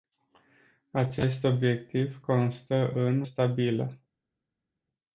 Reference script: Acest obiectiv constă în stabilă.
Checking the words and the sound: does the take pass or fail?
pass